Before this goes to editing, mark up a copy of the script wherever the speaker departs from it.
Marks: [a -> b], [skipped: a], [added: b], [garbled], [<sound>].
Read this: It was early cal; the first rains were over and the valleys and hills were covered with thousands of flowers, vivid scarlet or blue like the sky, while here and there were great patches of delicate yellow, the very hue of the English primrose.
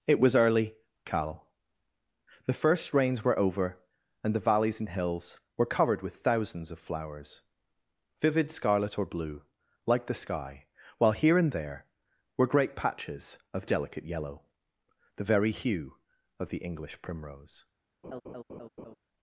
It was early cal; the first rains were over and the valleys and hills were covered with thousands of flowers, vivid scarlet or blue like the sky, while here and there were great patches of delicate yellow, the very hue of the English primrose. [laugh]